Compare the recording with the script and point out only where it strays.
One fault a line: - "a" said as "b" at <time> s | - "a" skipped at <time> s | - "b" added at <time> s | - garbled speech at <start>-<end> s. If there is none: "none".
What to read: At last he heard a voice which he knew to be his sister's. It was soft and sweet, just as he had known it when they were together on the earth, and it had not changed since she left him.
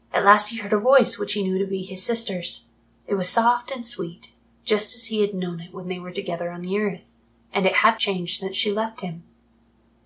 - "not" skipped at 8.0 s